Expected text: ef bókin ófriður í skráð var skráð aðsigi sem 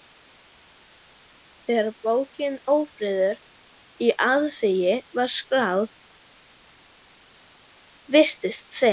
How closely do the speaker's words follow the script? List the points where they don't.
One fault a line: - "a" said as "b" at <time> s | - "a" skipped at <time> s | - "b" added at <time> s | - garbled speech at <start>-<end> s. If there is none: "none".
- "ef" said as "þegar" at 1.6 s
- "skráð" said as "aðsigi" at 4.3 s
- "aðsigi" said as "virtist" at 8.2 s